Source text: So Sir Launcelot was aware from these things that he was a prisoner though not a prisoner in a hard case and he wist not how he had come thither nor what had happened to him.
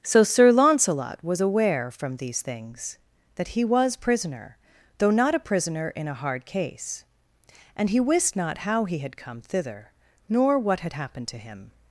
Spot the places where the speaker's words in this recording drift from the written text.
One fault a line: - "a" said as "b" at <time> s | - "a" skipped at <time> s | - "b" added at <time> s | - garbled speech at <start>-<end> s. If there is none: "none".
- "a" skipped at 4.0 s